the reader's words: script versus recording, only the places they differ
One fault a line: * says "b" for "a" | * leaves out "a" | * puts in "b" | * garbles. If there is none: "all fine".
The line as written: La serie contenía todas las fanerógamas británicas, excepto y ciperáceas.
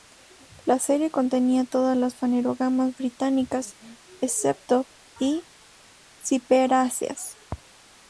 all fine